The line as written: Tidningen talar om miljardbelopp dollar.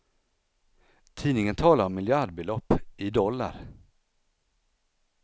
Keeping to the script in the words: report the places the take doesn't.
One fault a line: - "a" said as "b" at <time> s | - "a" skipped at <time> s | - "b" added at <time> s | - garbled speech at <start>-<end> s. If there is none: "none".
- "i" added at 3.0 s